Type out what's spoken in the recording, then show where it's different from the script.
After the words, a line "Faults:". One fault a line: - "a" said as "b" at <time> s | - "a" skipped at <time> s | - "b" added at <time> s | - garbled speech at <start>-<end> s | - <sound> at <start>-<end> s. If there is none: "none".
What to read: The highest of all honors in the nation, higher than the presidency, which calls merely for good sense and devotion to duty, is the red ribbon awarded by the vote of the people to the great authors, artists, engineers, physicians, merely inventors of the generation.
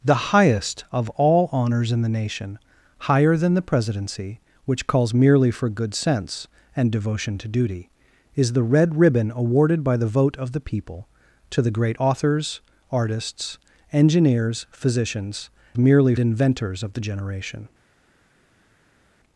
The highest of all honors in the nation, higher than the presidency, which calls merely for good sense and devotion to duty, is the red ribbon awarded by the vote of the people to the great authors, artists, engineers, physicians, merely inventors of the generation.
Faults:
none